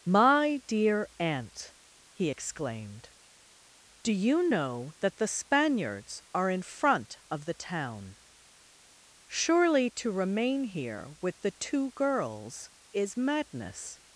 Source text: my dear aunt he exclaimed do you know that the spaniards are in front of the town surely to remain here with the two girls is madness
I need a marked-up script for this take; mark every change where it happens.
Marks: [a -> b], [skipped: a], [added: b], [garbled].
my dear aunt he exclaimed do you know that the spaniards are in front of the town surely to remain here with the two girls is madness